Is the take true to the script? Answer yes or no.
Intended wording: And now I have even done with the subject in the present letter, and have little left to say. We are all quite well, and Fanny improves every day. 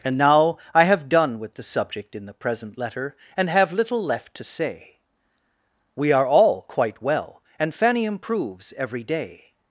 no